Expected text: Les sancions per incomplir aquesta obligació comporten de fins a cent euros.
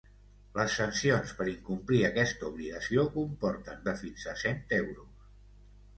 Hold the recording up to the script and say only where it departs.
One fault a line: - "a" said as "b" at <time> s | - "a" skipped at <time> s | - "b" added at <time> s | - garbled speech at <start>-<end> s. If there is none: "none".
none